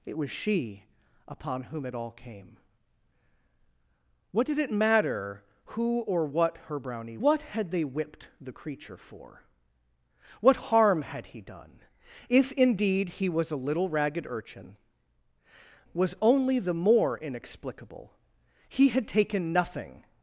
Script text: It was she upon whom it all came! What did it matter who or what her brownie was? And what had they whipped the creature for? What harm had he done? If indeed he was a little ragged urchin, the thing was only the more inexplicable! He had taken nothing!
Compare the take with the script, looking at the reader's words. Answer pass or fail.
fail